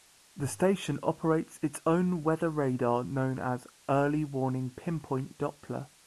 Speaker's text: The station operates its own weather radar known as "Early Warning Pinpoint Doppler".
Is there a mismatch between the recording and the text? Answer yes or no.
no